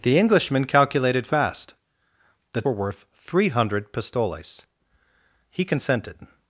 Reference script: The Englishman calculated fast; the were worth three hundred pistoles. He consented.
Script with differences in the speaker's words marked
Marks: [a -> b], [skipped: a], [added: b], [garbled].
The Englishman calculated fast; the were worth three hundred pistoles. He consented.